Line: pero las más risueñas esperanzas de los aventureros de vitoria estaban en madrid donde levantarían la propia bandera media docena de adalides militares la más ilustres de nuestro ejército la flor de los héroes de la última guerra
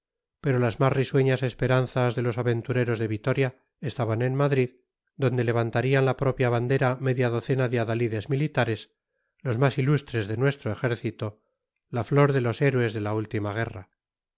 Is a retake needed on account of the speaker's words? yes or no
yes